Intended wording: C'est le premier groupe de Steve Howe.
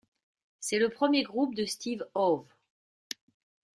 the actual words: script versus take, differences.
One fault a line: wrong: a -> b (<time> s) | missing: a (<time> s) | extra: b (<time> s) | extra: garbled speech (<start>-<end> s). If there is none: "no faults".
no faults